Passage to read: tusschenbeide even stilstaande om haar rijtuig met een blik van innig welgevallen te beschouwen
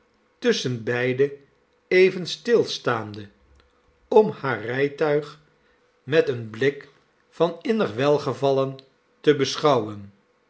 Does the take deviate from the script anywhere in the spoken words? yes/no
no